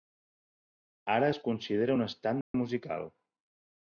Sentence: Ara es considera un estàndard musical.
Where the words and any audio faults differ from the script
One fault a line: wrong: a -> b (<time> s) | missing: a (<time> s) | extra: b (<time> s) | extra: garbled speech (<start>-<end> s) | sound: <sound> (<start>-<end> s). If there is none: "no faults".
sound: dropout (2.4-2.5 s)